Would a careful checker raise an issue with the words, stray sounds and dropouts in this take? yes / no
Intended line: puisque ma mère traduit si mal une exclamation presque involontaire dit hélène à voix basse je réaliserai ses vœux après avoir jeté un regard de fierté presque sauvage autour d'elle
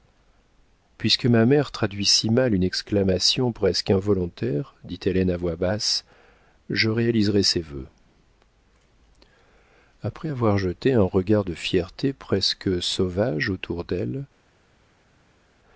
no